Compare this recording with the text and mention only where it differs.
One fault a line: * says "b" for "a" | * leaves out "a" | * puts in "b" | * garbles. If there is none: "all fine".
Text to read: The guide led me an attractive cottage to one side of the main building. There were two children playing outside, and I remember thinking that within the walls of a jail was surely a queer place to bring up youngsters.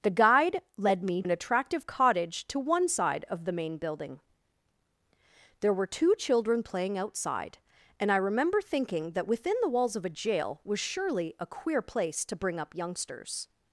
all fine